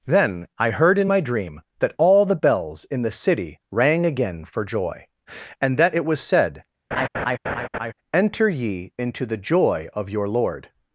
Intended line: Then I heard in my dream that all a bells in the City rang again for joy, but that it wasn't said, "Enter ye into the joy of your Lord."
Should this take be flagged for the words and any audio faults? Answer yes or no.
yes